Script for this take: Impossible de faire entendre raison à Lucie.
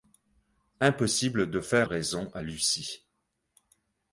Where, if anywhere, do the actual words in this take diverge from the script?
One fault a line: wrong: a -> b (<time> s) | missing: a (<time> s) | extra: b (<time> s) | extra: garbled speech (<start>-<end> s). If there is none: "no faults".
missing: entendre (1.9 s)